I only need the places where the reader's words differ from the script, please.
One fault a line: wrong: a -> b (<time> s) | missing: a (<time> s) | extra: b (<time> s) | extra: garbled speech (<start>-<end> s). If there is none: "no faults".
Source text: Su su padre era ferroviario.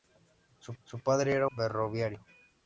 no faults